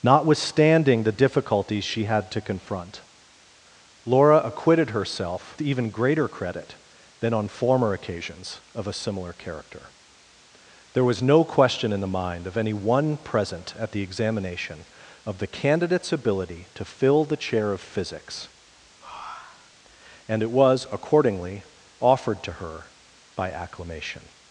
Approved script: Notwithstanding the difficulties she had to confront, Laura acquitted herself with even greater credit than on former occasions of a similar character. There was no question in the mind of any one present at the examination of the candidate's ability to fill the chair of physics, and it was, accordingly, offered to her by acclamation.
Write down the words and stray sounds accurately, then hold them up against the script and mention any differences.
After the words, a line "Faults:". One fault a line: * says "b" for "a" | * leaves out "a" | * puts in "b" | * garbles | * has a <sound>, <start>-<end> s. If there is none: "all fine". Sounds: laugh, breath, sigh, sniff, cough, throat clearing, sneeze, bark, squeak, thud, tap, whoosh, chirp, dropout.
Notwithstanding the difficulties she had to confront, Laura acquitted herself even greater credit than on former occasions of a similar character. There was no question in the mind of any one present at the examination of the candidate's ability to fill the chair of physics, and it was, accordingly, offered to her by acclamation.
Faults:
* leaves out "with"
* has a breath, 19.0-19.8 s